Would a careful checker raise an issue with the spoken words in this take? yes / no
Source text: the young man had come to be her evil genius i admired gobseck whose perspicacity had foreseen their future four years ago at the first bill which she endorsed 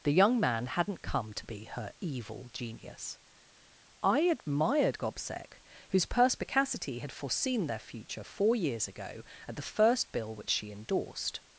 yes